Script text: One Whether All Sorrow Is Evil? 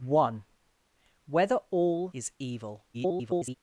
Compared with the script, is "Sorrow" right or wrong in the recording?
wrong